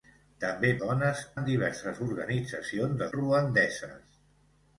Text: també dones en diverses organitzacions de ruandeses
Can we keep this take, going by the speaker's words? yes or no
yes